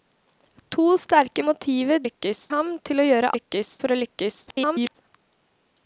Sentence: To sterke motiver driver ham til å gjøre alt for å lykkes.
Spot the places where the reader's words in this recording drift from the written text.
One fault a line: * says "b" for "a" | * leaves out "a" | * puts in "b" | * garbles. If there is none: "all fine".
* says "lykkes" for "driver"
* says "lykkes" for "alt"
* garbles